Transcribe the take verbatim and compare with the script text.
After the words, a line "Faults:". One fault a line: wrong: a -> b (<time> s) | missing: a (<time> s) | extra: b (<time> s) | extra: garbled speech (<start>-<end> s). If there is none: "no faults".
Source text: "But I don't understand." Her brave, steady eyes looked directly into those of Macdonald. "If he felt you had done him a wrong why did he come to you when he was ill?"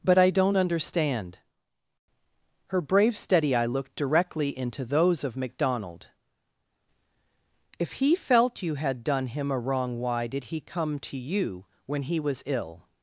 "But I don't understand." Her brave, steady eye looked directly into those of Macdonald. "If he felt you had done him a wrong why did he come to you when he was ill?"
Faults:
wrong: eyes -> eye (3.5 s)